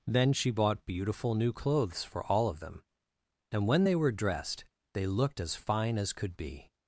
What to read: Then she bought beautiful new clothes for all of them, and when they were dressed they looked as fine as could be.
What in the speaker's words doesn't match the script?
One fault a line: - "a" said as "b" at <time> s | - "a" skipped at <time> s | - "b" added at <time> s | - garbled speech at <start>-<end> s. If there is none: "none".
none